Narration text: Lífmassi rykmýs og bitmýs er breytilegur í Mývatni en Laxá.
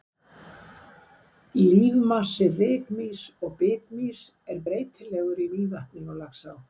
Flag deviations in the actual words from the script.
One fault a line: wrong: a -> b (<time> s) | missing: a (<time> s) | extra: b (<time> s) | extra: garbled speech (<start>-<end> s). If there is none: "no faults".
wrong: en -> og (6.1 s)